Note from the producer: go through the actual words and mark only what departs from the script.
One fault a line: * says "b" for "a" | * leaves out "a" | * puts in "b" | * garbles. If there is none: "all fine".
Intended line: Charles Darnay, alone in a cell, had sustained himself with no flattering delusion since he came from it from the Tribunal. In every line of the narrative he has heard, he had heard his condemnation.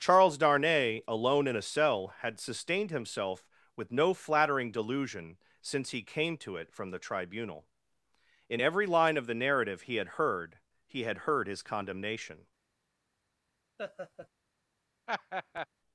* says "to" for "from"
* says "had" for "has"